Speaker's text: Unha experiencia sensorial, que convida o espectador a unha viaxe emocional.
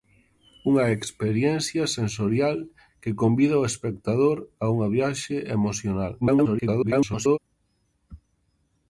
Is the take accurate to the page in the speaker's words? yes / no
no